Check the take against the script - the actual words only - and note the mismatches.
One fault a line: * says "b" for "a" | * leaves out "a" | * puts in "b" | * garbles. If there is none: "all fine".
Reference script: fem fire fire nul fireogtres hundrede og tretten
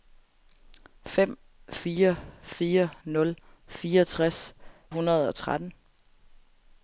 all fine